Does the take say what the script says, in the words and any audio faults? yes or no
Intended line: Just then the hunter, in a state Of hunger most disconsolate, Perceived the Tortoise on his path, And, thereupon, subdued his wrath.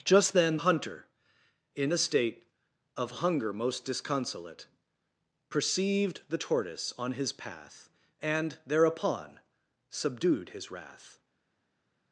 no